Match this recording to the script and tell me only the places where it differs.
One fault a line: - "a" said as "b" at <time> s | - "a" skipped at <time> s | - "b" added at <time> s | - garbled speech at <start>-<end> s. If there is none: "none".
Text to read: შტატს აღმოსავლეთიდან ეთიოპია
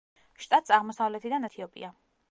none